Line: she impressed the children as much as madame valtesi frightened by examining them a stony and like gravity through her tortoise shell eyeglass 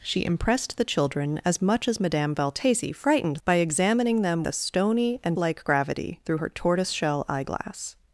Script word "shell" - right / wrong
right